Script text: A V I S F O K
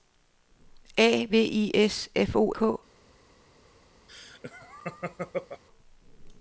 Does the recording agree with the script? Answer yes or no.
yes